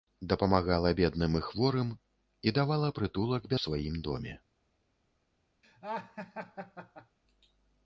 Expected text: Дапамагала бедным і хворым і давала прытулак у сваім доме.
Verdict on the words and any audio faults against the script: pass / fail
fail